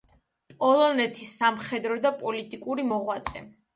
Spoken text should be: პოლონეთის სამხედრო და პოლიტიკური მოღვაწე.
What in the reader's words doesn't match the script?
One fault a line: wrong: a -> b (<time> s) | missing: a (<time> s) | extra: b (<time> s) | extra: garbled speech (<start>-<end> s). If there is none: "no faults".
no faults